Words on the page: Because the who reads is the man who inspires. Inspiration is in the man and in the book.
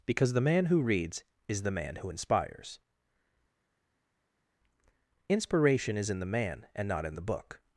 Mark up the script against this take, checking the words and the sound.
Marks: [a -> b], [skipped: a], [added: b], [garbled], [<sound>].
Because the [added: man] who reads is the man who inspires. Inspiration is in the man and [added: not] in the book.